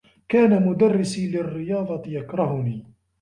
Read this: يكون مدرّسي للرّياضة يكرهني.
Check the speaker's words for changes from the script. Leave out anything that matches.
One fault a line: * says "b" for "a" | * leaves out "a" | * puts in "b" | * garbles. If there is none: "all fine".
* says "كان" for "يكون"